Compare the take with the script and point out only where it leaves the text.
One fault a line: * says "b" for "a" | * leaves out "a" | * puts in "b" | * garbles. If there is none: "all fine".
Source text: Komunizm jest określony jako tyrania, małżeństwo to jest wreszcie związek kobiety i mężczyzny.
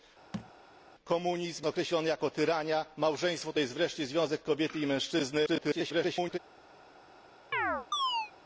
* leaves out "jest"
* garbles